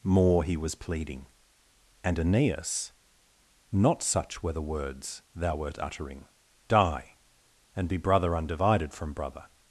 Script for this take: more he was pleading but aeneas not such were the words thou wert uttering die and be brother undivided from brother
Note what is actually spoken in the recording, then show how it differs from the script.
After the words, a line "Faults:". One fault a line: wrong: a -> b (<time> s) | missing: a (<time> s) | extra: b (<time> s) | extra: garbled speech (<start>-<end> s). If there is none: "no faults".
more he was pleading and aeneas not such were the words thou wert uttering die and be brother undivided from brother
Faults:
wrong: but -> and (2.0 s)